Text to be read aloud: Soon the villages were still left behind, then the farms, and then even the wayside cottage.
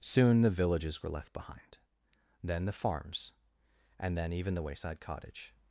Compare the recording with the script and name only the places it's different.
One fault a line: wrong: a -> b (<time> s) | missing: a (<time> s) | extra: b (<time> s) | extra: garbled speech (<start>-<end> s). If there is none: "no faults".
missing: still (1.1 s)